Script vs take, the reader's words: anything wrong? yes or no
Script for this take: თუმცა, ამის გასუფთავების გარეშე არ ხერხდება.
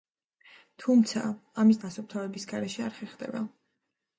no